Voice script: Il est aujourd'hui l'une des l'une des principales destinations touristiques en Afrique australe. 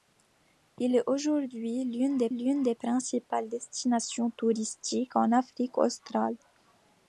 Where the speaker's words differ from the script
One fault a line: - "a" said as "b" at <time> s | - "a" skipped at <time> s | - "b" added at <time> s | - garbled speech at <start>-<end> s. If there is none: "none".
none